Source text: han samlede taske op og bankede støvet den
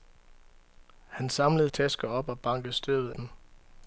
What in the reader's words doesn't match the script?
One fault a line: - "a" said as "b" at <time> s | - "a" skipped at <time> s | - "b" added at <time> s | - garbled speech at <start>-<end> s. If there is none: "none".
none